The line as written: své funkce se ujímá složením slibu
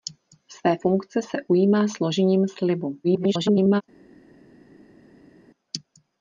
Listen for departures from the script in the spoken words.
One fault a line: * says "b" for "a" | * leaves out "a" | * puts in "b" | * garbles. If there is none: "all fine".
* garbles